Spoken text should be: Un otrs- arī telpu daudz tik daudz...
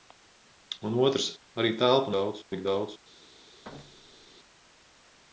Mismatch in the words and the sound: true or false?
true